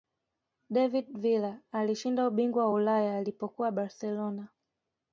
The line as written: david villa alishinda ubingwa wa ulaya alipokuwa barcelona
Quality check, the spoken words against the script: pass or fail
pass